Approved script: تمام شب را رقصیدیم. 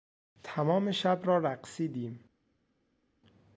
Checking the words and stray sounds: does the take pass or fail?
pass